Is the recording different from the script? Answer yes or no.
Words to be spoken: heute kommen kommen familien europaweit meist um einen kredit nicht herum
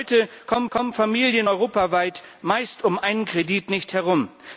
no